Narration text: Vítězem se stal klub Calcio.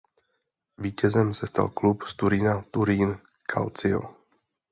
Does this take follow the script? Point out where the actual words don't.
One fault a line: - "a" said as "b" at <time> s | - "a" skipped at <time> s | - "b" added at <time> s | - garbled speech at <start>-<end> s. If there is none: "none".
- "z Turína Turín" added at 2.0 s